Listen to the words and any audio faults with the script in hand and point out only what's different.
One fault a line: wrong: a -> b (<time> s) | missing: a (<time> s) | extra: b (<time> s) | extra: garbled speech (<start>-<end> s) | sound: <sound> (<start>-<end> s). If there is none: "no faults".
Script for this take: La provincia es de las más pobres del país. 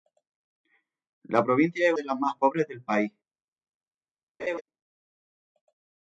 sound: laugh (4.4-4.6 s)